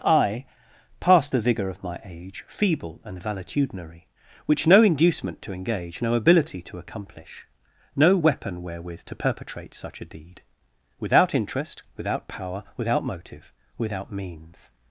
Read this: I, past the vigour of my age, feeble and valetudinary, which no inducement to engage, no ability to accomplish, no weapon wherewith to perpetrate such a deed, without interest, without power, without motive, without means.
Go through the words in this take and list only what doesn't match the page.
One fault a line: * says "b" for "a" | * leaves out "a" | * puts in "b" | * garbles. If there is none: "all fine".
all fine